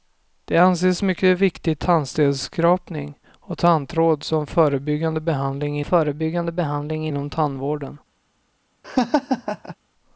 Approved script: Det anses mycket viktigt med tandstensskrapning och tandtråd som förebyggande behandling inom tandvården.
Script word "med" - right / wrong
wrong